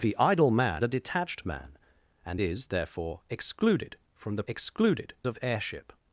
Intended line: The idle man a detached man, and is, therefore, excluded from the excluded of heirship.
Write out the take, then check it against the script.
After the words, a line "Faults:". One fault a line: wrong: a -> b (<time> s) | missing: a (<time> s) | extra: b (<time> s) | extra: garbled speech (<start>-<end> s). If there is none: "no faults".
The idle man a detached man, and is, therefore, excluded from the excluded of heirship.
Faults:
no faults